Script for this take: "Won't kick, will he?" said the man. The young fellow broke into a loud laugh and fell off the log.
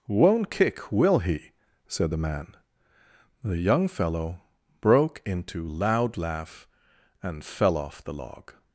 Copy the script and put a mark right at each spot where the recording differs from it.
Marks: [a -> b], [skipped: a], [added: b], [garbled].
"Won't kick, will he?" said the man. The young fellow broke into [skipped: a] loud laugh and fell off the log.